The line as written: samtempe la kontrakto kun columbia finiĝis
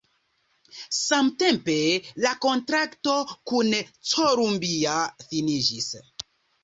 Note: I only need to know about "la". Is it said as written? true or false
true